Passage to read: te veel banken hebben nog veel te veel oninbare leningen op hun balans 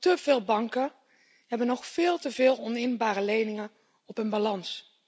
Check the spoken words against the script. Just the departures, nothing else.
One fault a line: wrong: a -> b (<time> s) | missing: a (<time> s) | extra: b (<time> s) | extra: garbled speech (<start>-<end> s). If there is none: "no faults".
no faults